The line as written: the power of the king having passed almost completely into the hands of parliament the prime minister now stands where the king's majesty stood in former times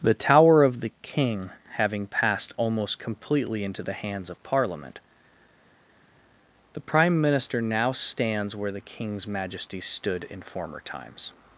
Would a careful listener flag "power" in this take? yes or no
yes